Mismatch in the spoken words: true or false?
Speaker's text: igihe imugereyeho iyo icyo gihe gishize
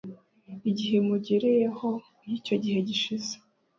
false